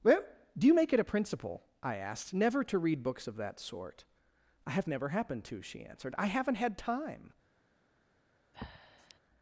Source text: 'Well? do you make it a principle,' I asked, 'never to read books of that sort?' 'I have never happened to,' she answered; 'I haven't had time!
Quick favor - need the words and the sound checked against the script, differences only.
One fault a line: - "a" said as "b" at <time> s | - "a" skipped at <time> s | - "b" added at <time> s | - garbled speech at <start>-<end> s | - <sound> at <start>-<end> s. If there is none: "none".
- breath at 8.5-9.2 s